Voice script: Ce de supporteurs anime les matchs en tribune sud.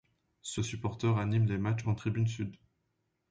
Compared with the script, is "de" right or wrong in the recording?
right